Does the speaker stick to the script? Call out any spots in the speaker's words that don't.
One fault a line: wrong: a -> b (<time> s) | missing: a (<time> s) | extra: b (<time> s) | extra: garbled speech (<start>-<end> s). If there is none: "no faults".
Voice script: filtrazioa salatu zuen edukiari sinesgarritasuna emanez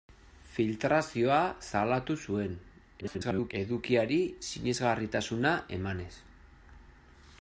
extra: garbled speech (3.0-3.5 s)